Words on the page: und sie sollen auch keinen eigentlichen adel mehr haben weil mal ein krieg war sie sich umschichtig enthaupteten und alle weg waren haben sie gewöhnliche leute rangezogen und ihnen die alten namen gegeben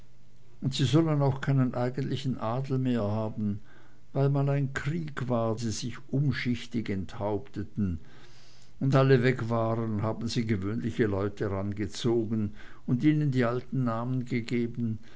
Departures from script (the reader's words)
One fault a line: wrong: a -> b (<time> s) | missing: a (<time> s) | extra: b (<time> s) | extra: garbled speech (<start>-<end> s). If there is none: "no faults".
no faults